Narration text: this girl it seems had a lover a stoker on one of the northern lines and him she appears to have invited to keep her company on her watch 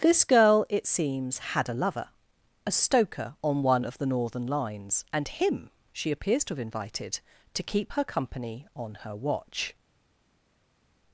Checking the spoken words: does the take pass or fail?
pass